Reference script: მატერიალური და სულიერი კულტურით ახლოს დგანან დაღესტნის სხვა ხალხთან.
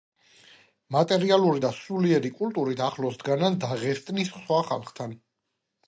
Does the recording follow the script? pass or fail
pass